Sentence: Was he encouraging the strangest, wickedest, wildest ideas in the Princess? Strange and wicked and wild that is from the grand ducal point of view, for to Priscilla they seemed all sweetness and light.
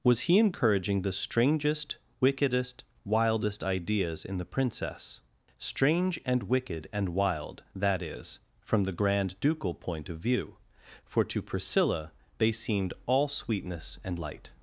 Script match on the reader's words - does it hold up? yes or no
yes